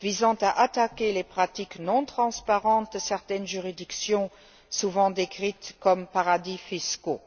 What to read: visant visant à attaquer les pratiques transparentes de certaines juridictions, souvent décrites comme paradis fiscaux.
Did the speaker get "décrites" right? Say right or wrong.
right